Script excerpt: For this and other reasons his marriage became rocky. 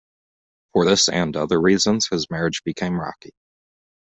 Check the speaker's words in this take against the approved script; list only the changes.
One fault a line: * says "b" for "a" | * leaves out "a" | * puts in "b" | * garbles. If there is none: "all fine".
all fine